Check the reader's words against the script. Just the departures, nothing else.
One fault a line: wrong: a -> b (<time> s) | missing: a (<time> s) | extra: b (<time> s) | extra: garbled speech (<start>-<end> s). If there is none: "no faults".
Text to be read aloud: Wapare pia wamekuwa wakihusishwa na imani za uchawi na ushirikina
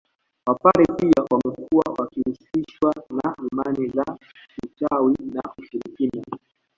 no faults